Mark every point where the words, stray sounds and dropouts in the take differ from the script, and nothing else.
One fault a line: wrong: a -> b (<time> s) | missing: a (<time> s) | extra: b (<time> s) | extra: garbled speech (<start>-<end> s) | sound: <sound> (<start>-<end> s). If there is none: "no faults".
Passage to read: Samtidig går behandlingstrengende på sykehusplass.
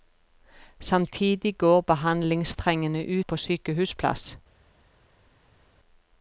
no faults